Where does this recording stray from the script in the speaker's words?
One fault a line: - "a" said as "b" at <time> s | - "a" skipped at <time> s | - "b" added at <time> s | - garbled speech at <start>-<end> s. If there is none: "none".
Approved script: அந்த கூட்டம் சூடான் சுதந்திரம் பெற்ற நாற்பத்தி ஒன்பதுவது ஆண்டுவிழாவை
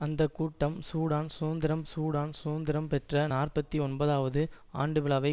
- "சூடான் சுதந்திரம்" added at 1.9 s